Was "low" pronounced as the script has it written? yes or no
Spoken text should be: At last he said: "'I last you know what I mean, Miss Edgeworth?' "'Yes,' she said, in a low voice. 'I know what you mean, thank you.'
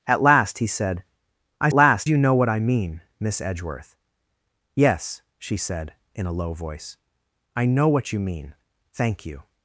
yes